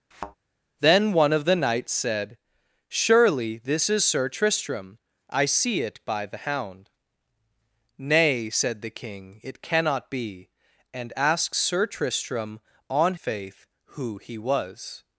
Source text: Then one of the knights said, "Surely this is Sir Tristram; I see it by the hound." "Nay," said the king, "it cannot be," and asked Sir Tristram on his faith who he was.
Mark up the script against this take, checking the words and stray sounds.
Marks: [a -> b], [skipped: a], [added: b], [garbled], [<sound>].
[thud] Then one of the knights said, "Surely this is Sir Tristram; I see it by the hound." "Nay," said the king, "it cannot be," and asked Sir Tristram on [skipped: his] faith who he was.